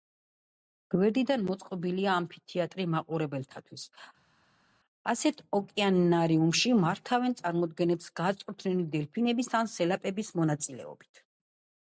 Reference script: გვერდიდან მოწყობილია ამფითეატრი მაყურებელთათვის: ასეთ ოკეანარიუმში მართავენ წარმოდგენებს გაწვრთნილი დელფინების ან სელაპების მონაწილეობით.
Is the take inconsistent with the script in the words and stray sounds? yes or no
no